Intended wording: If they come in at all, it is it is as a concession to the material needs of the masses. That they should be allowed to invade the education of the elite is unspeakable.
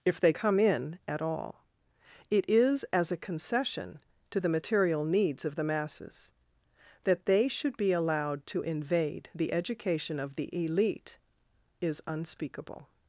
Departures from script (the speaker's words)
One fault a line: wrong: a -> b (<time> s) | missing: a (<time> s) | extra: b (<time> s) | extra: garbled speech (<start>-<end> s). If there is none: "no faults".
missing: it is (2.8 s)